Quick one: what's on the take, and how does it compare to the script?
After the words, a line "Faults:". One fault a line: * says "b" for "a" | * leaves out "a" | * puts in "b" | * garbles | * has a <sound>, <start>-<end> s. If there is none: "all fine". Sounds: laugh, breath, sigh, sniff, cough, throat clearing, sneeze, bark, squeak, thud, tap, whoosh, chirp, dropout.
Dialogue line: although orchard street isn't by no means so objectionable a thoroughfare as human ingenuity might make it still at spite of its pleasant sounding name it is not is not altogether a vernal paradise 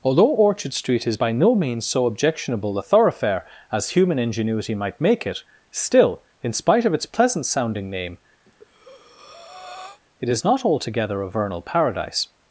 although orchard street is by no means so objectionable a thoroughfare as human ingenuity might make it still in spite of its pleasant sounding name it is not altogether a vernal paradise
Faults:
* says "is" for "isn't"
* says "in" for "at"
* has a breath, 8.5-10.0 s
* leaves out "is not"